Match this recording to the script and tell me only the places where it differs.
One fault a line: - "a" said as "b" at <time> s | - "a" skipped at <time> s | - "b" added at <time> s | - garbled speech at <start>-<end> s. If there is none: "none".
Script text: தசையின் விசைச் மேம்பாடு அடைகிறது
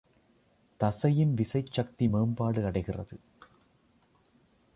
- "சக்தி" added at 1.7 s